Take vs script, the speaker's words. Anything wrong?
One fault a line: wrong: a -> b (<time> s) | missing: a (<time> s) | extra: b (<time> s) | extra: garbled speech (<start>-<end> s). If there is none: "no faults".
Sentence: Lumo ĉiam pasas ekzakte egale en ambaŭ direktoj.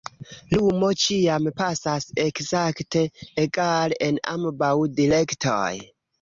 no faults